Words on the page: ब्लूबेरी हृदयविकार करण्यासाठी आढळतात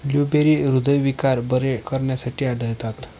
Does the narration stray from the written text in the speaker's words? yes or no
yes